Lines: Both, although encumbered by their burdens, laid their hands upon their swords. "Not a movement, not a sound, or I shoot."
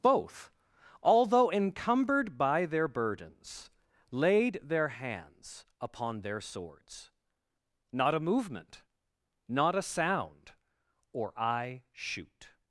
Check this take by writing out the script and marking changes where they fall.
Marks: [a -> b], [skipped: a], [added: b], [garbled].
Both, although encumbered by their burdens, laid their hands upon their swords. "Not a movement, not a sound, or I shoot."